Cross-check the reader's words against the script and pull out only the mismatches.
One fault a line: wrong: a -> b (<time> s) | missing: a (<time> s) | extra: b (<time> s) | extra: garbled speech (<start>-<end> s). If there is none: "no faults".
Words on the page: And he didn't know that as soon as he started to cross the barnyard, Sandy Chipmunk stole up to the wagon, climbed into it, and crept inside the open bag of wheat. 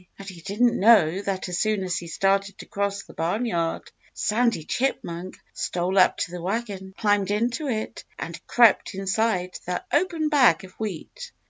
no faults